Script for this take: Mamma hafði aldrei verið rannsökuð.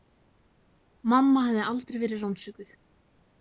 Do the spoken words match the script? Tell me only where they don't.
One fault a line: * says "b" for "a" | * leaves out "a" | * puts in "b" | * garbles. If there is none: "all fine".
all fine